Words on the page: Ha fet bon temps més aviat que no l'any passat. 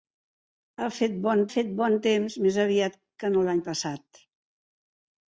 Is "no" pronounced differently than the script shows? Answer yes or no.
no